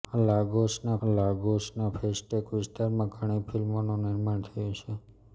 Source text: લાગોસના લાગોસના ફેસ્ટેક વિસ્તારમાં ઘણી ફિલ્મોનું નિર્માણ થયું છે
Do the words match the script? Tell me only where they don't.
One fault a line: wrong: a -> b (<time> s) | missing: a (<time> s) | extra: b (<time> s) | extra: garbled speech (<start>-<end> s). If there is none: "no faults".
no faults